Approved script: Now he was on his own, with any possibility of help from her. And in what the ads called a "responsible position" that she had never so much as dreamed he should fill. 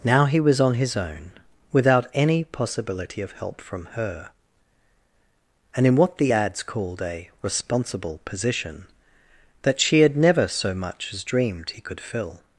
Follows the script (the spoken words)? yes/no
no